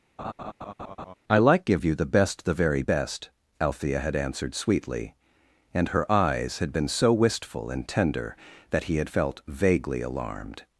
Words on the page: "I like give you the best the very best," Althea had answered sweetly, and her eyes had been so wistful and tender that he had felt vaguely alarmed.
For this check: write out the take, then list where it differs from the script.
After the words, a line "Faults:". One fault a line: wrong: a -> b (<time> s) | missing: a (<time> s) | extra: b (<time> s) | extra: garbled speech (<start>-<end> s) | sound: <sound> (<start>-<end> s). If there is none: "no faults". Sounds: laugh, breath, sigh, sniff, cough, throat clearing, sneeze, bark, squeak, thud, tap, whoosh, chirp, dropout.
"I like give you the best the very best," Althea had answered sweetly, and her eyes had been so wistful and tender that he had felt vaguely alarmed.
Faults:
sound: laugh (0.2-1.1 s)